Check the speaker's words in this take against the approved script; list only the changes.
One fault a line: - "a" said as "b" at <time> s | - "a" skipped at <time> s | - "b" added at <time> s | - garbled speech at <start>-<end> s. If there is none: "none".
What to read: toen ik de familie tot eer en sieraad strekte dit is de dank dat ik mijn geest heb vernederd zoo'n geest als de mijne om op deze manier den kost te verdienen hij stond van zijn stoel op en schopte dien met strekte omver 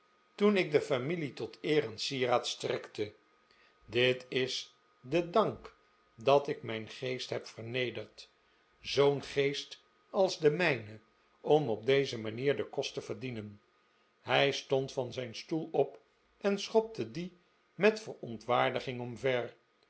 - "strekte" said as "verontwaardiging" at 18.0 s